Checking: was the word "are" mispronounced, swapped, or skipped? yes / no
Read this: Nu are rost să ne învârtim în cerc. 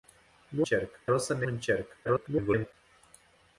yes